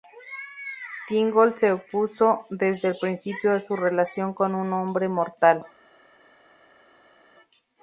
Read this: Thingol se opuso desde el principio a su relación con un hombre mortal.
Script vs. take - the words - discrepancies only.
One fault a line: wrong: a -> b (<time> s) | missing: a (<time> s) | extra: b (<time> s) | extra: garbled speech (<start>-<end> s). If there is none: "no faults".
no faults